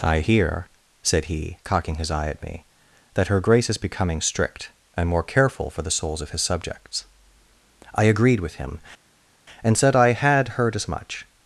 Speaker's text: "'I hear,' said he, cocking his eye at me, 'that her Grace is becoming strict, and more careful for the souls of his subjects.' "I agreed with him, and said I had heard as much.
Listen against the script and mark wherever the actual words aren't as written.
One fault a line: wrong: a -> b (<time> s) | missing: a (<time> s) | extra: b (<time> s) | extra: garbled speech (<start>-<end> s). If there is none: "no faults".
no faults